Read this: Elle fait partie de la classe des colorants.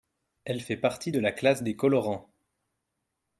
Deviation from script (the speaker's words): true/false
false